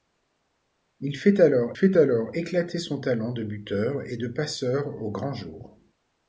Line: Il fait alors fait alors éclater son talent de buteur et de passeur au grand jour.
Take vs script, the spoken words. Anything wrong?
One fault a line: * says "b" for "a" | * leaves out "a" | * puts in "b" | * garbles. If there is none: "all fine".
all fine